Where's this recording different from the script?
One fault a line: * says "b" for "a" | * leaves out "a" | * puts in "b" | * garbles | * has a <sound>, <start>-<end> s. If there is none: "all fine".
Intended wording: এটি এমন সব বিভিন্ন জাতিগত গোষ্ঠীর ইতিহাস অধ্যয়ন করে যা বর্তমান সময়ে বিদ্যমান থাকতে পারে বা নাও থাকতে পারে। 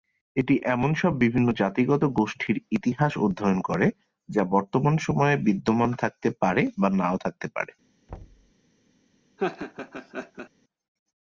* has a thud, 8.1-8.5 s
* has a laugh, 9.4-10.5 s